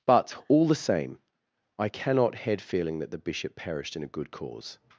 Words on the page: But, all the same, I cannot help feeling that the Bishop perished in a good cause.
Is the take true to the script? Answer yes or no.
no